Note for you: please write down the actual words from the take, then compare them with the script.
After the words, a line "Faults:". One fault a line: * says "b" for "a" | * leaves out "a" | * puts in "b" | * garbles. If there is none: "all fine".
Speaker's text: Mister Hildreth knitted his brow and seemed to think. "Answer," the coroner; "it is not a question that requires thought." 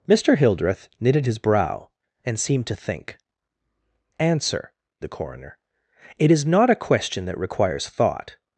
Mister Hildreth knitted his brow and seemed to think. "Answer," the coroner; "it is not a question that requires thought."
Faults:
all fine